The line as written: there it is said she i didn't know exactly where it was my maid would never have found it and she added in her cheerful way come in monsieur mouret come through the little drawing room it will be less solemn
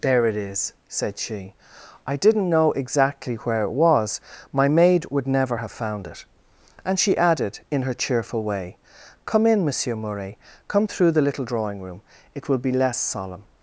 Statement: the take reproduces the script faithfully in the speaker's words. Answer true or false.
true